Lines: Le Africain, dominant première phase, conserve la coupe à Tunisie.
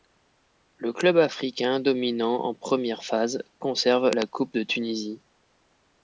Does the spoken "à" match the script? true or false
false